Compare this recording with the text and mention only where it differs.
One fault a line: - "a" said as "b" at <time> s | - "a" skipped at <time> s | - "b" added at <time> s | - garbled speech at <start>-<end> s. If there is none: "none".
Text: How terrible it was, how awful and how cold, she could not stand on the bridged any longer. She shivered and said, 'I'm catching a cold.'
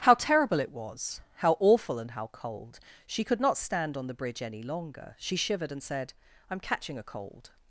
- "bridged" said as "bridge" at 4.2 s